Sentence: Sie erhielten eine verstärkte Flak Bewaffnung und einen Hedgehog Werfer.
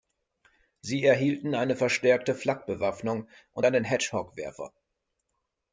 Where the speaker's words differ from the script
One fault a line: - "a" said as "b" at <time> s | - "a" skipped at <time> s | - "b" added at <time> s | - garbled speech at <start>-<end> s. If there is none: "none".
none